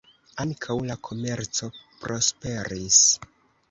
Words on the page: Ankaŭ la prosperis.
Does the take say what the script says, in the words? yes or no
no